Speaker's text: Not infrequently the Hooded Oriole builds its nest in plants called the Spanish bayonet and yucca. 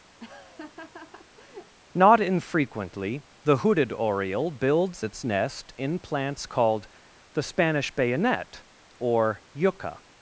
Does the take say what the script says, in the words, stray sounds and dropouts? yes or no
no